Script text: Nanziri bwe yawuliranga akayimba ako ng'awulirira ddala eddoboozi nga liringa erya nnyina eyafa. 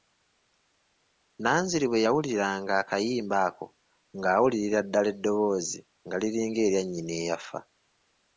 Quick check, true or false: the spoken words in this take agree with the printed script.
true